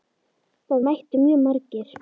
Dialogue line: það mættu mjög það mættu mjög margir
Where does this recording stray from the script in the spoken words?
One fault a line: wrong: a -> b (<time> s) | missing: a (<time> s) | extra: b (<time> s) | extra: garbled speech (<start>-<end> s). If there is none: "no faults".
missing: það mættu mjög (1.4 s)